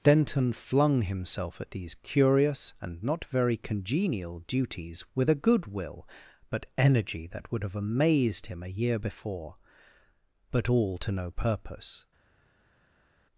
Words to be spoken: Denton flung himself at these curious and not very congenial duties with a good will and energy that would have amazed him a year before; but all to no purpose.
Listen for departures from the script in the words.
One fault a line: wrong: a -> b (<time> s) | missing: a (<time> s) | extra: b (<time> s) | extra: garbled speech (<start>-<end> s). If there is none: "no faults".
wrong: and -> but (6.5 s)